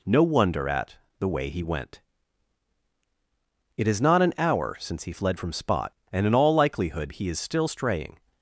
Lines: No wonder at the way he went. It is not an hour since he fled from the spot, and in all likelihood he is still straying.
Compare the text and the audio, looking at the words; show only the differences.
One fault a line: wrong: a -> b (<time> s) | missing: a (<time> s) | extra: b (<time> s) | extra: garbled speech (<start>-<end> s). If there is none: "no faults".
missing: the (5.5 s)